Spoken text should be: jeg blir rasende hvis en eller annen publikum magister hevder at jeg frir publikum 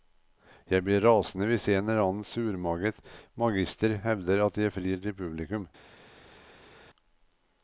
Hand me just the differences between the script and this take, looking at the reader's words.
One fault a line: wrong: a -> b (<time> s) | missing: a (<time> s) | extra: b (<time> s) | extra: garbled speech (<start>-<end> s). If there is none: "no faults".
wrong: publikum -> surmaget (2.3 s)
extra: til (5.0 s)